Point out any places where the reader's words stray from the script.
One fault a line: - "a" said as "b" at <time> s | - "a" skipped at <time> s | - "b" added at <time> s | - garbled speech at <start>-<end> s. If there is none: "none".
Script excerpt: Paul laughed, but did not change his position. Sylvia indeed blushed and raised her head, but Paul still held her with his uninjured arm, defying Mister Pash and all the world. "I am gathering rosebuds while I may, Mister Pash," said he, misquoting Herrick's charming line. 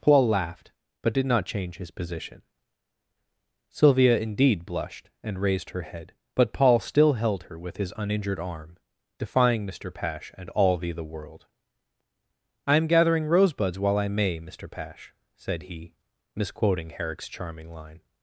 - "the" added at 10.9 s